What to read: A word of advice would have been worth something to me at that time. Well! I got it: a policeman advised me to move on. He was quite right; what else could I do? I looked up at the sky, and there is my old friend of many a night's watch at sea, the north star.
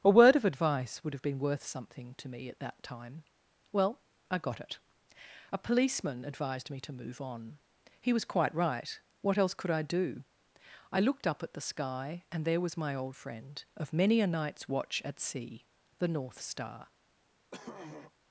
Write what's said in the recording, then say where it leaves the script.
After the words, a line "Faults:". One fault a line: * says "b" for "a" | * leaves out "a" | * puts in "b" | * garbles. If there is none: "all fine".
A word of advice would have been worth something to me at that time. Well! I got it: a policeman advised me to move on. He was quite right; what else could I do? I looked up at the sky, and there was my old friend of many a night's watch at sea, the north star.
Faults:
* says "was" for "is"